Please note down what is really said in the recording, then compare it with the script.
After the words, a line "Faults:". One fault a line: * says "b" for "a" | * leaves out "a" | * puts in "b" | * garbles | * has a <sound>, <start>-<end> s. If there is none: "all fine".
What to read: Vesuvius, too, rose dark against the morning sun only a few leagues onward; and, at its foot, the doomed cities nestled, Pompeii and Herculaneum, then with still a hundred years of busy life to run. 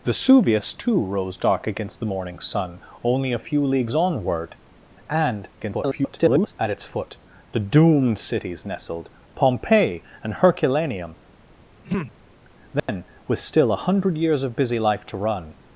Vesuvius, too, rose dark against the morning sun only a few leagues onward; and, [garbled] at its foot, the doomed cities nestled, Pompeii and Herculaneum, then with still a hundred years of busy life to run.
Faults:
* garbles
* has a throat clearing, 11.8-12.2 s
* has a dropout, 12.8-12.9 s